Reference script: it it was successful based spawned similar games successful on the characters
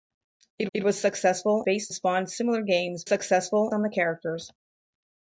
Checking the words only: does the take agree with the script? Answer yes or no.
yes